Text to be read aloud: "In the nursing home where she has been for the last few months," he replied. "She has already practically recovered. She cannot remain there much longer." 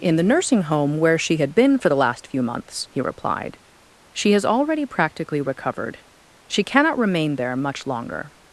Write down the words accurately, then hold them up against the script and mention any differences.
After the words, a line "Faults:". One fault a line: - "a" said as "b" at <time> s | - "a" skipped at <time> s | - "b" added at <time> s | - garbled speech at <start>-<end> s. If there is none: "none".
"In the nursing home where she had been for the last few months," he replied. "She has already practically recovered. She cannot remain there much longer."
Faults:
- "has" said as "had" at 1.4 s